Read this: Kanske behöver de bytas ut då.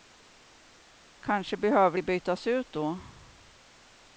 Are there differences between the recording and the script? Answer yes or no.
no